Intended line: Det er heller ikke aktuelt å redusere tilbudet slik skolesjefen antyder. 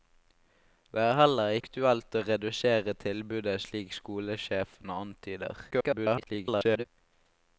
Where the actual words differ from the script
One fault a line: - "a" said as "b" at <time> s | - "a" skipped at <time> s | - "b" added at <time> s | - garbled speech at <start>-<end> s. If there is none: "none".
- "ikke" skipped at 1.6 s
- garbled speech at 5.7-6.8 s